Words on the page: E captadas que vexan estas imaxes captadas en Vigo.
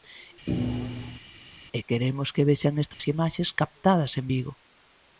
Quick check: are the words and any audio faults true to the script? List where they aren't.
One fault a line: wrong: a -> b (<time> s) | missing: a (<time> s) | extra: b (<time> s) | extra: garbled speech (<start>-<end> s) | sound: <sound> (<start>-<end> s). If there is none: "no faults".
sound: thud (0.5-1.2 s)
wrong: captadas -> queremos (1.9 s)
sound: dropout (2.9-3.0 s)